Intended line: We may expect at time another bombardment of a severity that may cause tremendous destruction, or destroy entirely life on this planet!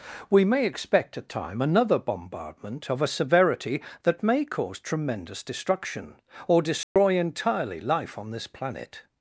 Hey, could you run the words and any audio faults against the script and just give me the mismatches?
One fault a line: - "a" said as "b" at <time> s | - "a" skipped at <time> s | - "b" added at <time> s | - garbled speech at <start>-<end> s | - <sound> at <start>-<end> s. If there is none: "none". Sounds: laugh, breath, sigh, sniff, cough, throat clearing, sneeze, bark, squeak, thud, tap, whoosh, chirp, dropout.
- dropout at 6.8-7.0 s